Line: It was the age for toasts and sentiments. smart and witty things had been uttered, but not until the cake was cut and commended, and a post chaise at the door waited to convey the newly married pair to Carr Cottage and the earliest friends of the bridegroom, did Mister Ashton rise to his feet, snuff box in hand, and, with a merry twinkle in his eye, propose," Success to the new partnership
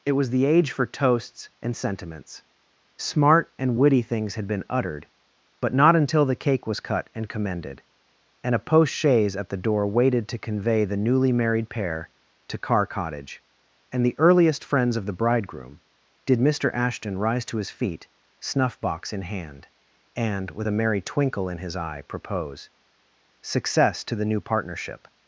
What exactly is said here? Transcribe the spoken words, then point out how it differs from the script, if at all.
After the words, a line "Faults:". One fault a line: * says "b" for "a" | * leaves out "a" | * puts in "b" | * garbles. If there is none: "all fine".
It was the age for toasts and sentiments. smart and witty things had been uttered, but not until the cake was cut and commended, and a post chaise at the door waited to convey the newly married pair to Carr Cottage and the earliest friends of the bridegroom, did Mister Ashton rise to his feet, snuff box in hand, and, with a merry twinkle in his eye, propose," Success to the new partnership
Faults:
all fine